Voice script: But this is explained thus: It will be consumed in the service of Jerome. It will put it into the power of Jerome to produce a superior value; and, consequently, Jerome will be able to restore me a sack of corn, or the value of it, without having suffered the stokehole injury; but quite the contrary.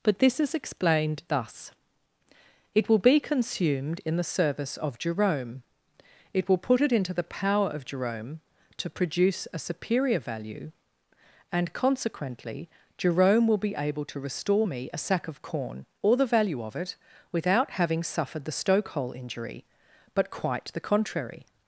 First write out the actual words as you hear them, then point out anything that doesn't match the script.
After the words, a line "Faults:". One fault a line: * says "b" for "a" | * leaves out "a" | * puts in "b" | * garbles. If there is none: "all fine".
But this is explained thus: It will be consumed in the service of Jerome. It will put it into the power of Jerome to produce a superior value; and, consequently, Jerome will be able to restore me a sack of corn, or the value of it, without having suffered the stokehole injury; but quite the contrary.
Faults:
all fine